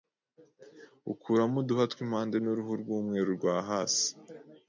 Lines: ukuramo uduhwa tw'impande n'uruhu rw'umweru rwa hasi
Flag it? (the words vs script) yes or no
no